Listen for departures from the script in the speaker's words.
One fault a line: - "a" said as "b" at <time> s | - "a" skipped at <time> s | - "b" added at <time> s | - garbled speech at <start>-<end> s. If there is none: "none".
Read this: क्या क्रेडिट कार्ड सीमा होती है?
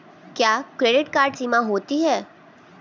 none